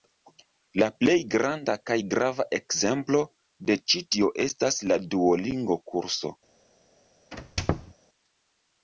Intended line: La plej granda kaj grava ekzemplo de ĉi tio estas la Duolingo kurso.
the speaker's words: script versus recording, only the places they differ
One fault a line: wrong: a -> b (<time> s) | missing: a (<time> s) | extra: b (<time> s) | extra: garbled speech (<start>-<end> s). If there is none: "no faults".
no faults